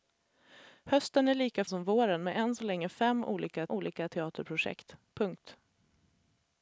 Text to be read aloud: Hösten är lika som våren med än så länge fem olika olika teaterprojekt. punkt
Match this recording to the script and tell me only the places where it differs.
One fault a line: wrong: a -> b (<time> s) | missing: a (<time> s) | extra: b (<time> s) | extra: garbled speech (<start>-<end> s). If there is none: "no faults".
no faults